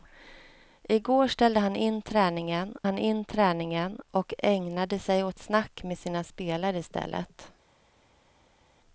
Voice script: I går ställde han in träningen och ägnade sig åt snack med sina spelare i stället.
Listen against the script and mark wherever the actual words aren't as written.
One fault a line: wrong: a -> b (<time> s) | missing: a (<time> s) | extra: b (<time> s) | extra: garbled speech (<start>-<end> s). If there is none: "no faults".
extra: han in träningen (2.8 s)